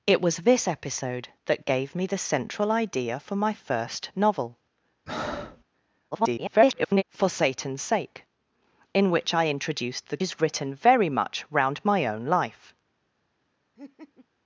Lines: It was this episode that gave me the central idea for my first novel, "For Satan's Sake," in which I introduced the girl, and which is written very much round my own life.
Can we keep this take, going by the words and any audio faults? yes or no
no